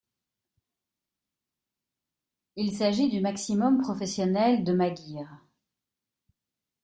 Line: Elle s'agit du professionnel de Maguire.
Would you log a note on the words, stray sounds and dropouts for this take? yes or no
yes